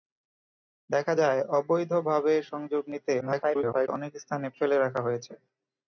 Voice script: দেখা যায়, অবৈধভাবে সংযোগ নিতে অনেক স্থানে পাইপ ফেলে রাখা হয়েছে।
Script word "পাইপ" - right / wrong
wrong